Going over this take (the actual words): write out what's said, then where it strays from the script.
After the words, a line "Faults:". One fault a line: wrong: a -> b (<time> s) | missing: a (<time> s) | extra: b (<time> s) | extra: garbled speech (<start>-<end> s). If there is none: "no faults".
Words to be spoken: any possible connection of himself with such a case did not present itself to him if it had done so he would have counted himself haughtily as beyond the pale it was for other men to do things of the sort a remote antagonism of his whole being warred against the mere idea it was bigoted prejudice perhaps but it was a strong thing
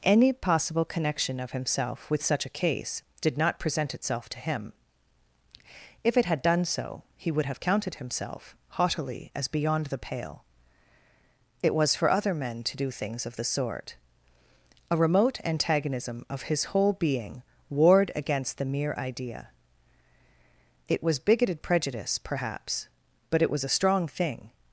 any possible connection of himself with such a case did not present itself to him if it had done so he would have counted himself haughtily as beyond the pale it was for other men to do things of the sort a remote antagonism of his whole being warred against the mere idea it was bigoted prejudice perhaps but it was a strong thing
Faults:
no faults